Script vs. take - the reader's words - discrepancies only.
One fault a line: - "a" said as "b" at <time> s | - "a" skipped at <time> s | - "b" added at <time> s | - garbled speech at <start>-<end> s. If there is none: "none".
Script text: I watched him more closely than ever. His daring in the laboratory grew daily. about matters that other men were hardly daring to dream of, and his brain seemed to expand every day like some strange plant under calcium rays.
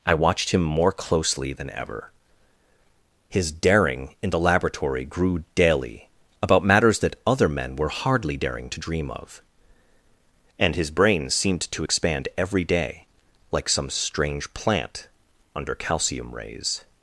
none